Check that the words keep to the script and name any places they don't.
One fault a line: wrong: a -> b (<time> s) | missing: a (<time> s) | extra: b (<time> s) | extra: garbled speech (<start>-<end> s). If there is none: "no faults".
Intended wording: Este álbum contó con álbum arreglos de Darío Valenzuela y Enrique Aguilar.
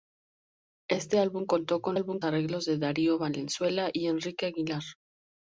no faults